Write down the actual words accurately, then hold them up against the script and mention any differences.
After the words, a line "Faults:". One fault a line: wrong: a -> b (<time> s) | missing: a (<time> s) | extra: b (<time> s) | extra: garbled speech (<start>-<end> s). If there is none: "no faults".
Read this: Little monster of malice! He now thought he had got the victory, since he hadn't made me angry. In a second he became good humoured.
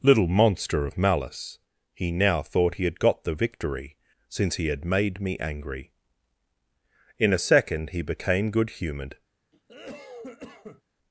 Little monster of malice! He now thought he had got the victory, since he had made me angry. In a second he became good humoured.
Faults:
wrong: hadn't -> had (4.7 s)